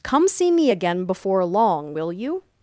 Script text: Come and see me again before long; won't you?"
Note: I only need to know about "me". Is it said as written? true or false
true